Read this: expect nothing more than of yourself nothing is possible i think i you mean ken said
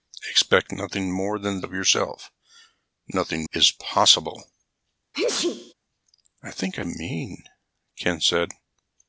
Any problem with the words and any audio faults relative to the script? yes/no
yes